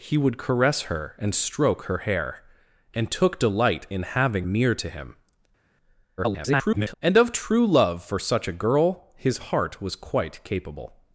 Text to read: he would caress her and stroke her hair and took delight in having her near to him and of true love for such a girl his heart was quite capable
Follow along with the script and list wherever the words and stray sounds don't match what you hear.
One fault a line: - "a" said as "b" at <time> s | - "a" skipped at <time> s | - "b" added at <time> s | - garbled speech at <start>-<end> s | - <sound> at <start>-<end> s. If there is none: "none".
- "her" skipped at 4.5 s
- garbled speech at 6.2-6.9 s